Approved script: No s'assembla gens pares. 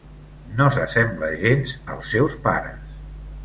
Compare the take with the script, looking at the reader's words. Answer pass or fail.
fail